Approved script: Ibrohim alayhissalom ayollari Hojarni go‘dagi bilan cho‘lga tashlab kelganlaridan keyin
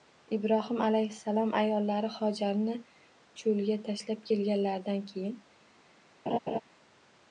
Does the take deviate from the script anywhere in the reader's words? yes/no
yes